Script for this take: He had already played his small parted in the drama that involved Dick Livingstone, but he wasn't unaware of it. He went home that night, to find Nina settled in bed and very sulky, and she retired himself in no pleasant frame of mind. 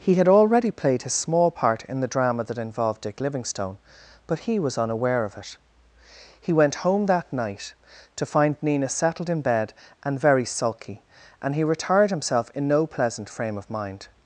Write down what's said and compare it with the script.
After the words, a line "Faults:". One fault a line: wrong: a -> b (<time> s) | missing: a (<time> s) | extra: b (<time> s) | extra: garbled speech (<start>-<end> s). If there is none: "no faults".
He had already played his small part in the drama that involved Dick Livingstone, but he was unaware of it. He went home that night, to find Nina settled in bed and very sulky, and he retired himself in no pleasant frame of mind.
Faults:
wrong: parted -> part (1.5 s)
wrong: wasn't -> was (4.6 s)
wrong: she -> he (11.5 s)